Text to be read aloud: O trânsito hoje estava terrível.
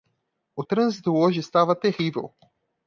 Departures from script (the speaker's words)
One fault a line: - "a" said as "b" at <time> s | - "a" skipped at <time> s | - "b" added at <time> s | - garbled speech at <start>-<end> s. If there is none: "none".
none